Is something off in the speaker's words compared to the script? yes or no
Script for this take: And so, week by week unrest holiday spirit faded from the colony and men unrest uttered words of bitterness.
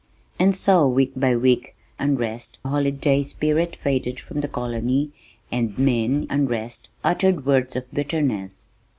no